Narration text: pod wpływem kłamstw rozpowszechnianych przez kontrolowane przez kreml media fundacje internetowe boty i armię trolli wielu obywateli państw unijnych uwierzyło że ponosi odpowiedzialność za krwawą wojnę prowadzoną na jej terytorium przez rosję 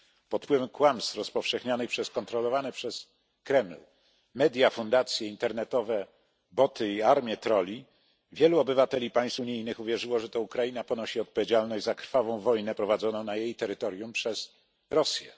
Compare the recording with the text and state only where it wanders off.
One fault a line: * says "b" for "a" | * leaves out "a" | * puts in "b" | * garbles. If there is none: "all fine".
* puts in "to ukraina"